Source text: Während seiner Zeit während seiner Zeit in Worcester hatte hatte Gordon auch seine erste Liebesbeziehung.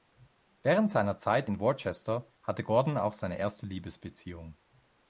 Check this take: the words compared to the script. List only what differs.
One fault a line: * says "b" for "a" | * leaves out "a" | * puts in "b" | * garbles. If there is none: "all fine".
* leaves out "während seiner Zeit"
* leaves out "hatte"